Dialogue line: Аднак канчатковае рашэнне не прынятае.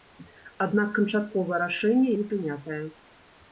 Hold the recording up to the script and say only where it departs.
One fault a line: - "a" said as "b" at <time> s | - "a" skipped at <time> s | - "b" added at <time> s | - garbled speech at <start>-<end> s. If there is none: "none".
none